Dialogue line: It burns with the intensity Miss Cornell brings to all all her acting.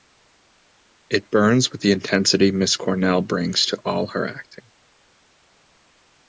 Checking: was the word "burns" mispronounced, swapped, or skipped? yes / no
no